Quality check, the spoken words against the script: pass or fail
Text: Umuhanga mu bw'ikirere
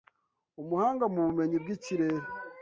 fail